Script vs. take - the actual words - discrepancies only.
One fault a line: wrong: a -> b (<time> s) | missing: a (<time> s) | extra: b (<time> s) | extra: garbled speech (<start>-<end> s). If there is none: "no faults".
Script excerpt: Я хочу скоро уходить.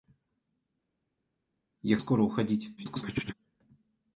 missing: хочу (2.0 s)
extra: garbled speech (2.8-3.3 s)